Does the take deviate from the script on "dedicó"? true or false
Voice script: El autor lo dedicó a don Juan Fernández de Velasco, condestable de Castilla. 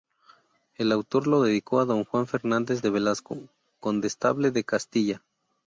false